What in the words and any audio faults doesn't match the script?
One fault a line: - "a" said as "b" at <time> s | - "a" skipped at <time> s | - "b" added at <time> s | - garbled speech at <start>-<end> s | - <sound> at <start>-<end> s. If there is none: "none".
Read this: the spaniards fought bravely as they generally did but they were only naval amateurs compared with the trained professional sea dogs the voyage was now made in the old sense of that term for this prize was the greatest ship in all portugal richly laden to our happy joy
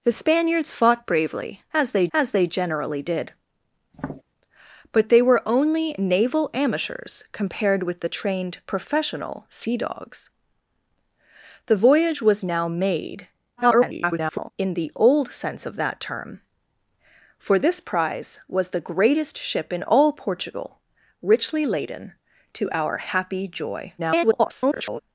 - "as they" added at 2.1 s
- tap at 3.9-4.2 s
- garbled speech at 13.6-14.5 s
- garbled speech at 24.0-25.0 s